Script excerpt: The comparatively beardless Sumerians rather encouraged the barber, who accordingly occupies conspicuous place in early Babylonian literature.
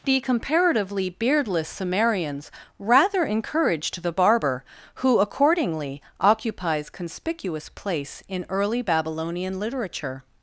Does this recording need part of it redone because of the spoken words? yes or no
no